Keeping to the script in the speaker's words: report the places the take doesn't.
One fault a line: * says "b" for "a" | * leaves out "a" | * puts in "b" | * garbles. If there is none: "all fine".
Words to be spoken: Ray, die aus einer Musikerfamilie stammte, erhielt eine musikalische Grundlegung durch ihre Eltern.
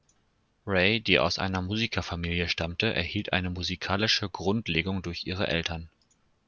all fine